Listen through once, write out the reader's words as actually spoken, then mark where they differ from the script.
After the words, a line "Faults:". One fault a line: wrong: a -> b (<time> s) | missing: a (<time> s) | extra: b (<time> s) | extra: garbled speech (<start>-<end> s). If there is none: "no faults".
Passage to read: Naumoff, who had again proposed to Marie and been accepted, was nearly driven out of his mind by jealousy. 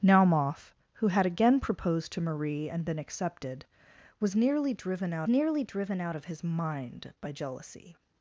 Naumoff, who had again proposed to Marie and been accepted, was nearly driven out nearly driven out of his mind by jealousy.
Faults:
extra: nearly driven out (5.3 s)